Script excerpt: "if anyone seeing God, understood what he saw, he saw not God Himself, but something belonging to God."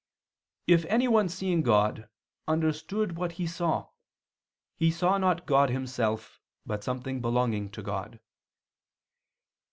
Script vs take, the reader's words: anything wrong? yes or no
no